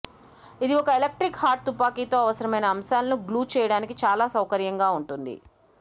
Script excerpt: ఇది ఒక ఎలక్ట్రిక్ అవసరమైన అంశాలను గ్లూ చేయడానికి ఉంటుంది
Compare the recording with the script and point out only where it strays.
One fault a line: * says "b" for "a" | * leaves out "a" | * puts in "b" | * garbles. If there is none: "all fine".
* puts in "హాట్ తుపాకీతో"
* puts in "చాలా సౌకర్యంగా"